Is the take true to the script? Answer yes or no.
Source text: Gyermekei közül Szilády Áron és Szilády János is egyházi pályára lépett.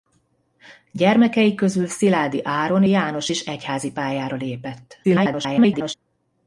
no